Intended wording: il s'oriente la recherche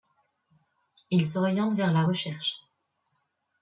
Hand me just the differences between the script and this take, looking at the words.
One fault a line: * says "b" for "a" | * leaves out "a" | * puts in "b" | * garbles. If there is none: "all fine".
* puts in "vers"